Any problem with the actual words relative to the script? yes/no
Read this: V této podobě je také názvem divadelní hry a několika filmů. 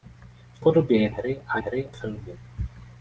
yes